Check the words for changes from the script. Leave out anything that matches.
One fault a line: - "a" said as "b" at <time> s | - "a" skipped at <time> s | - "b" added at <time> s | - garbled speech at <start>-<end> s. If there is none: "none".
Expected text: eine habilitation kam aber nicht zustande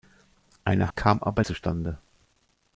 - "habilitation" skipped at 0.9 s
- "nicht" skipped at 1.4 s